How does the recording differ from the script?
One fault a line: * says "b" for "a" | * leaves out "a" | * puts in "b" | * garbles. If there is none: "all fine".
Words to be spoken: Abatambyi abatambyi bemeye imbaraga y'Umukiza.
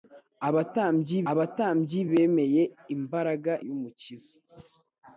all fine